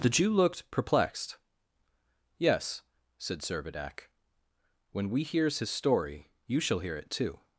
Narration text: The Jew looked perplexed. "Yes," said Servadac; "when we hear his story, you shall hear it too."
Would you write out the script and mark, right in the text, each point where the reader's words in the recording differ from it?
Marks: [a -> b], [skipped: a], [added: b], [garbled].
The Jew looked perplexed. "Yes," said Servadac; "when we [hear -> hears] his story, you shall hear it too."